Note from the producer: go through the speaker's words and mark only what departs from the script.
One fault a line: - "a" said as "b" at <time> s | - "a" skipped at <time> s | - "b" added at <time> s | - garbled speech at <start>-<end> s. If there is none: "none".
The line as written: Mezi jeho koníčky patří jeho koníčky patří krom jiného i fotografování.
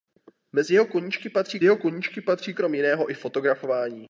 none